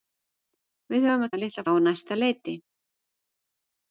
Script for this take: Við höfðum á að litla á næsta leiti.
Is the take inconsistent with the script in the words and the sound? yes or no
no